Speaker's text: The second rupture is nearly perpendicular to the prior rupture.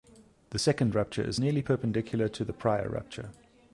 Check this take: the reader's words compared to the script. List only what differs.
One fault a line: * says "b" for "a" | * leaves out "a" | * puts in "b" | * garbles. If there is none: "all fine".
all fine